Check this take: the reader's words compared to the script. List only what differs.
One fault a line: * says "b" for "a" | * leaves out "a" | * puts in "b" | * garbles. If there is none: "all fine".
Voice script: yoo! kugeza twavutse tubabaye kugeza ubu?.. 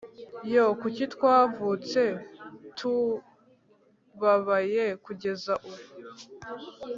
* says "kuki" for "kugeza"